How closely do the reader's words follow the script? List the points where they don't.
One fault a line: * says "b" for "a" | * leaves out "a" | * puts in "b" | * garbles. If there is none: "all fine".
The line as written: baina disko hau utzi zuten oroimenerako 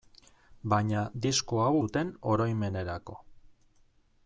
* leaves out "utzi"